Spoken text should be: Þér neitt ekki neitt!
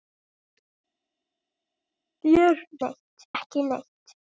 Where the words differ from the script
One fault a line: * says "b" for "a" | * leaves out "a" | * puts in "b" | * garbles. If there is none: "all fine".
all fine